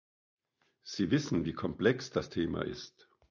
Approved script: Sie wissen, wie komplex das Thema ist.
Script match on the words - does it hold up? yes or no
yes